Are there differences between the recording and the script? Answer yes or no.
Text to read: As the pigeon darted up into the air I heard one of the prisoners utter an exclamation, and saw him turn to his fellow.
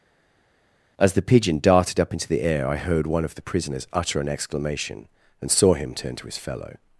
no